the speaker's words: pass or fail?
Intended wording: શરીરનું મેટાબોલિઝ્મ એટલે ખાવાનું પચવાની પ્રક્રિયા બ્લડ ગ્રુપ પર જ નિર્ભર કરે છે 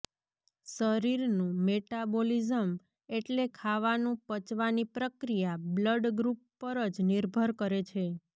pass